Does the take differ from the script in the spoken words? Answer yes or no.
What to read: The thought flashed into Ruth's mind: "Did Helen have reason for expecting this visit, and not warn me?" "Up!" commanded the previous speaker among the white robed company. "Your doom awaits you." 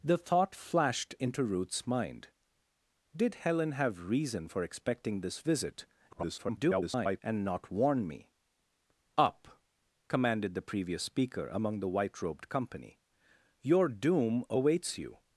yes